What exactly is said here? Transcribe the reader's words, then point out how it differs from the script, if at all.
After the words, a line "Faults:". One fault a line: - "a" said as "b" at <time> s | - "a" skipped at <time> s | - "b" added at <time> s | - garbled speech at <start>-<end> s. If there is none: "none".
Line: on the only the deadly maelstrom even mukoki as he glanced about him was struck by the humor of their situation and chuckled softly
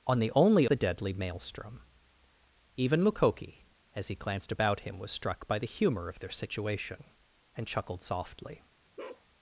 on the only the deadly maelstrom even mukoki as he glanced about him was struck by the humor of their situation and chuckled softly
Faults:
none